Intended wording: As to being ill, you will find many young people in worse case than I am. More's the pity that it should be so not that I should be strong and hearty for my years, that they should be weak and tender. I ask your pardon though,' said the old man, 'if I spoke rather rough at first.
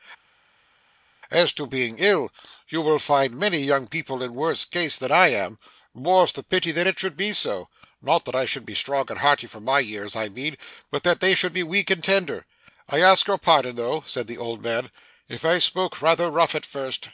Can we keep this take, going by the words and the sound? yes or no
no